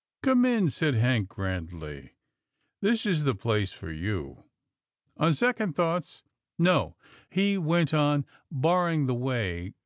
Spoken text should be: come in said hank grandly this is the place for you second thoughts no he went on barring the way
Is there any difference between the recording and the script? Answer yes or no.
yes